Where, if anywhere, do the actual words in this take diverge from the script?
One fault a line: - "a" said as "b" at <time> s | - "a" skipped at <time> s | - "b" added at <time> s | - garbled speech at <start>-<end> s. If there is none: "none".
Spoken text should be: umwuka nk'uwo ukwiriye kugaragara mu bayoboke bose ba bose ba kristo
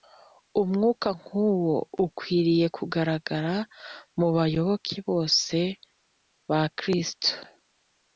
- "bose ba" skipped at 6.6 s